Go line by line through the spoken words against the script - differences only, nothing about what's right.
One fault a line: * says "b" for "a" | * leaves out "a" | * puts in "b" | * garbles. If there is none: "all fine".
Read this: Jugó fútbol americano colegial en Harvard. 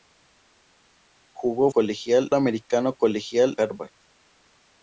* says "colegial" for "fútbol"
* leaves out "en"